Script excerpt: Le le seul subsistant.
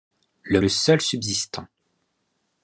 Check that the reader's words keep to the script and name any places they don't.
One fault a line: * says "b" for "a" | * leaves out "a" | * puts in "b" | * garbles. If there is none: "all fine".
all fine